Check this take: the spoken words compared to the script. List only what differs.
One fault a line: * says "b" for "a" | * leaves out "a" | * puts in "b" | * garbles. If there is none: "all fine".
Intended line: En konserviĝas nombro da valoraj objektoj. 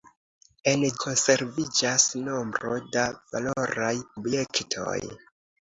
all fine